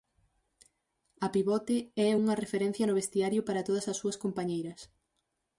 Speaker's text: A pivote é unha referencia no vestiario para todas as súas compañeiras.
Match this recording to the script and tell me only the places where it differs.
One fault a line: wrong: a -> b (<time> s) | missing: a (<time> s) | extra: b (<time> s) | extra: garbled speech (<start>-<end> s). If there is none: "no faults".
no faults